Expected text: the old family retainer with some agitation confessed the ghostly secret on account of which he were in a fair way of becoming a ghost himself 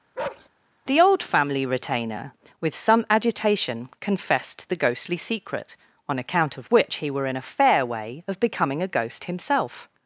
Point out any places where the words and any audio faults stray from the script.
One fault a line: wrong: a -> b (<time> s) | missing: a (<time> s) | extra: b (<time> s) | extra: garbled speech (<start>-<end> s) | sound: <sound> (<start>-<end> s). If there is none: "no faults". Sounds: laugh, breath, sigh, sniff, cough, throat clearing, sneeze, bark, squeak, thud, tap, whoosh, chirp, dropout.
sound: bark (0.2-0.5 s)